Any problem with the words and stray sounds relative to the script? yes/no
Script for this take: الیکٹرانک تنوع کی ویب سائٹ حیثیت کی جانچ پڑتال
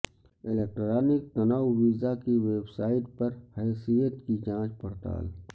yes